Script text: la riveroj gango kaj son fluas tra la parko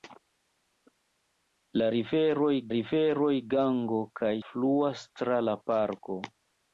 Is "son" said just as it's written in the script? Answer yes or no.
no